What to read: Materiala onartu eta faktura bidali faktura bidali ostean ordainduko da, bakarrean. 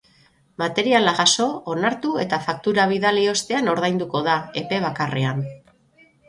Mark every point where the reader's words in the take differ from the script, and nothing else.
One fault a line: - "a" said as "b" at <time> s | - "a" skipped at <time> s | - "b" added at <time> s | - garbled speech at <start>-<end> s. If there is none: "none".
- "jaso" added at 1.1 s
- "faktura bidali" skipped at 3.2 s
- "epe" added at 4.7 s